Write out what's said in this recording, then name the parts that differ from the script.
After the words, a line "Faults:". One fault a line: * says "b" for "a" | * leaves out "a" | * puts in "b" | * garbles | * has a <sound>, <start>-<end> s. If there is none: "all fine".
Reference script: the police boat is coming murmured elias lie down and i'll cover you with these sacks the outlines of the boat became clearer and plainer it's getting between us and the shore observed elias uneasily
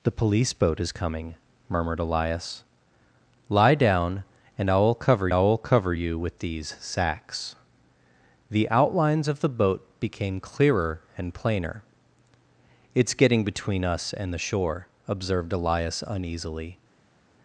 the police boat is coming murmured elias lie down and i'll cover i'll cover you with these sacks the outlines of the boat became clearer and plainer it's getting between us and the shore observed elias uneasily
Faults:
* puts in "i'll cover"